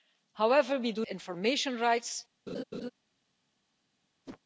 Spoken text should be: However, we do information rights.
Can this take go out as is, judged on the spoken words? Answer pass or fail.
pass